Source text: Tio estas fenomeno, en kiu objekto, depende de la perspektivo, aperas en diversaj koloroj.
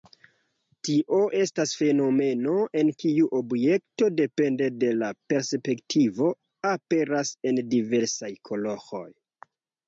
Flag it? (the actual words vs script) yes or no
no